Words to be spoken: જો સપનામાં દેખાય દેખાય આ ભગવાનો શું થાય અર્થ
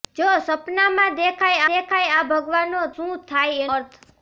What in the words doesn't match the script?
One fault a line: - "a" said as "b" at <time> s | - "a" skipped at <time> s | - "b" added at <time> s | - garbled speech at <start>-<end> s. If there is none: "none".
none